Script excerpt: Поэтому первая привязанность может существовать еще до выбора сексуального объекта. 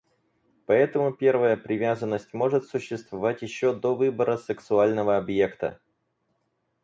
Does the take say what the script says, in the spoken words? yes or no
yes